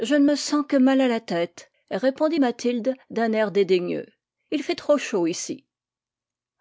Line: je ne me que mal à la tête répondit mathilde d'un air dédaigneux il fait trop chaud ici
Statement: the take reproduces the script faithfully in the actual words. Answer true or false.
false